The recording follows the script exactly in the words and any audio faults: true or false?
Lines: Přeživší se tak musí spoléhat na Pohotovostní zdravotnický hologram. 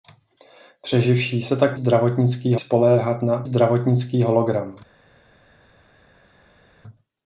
false